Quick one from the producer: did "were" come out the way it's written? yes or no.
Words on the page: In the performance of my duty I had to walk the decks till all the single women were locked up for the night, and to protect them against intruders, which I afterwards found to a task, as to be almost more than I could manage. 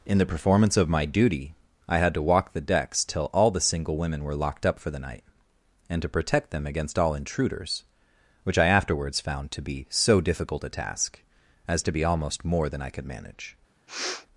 yes